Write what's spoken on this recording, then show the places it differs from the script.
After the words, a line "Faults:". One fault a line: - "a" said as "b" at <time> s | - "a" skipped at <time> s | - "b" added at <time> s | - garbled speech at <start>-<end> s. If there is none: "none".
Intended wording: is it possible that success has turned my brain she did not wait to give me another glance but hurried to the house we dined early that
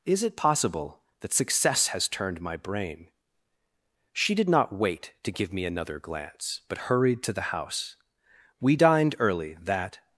is it possible that success has turned my brain she did not wait to give me another glance but hurried to the house we dined early that
Faults:
none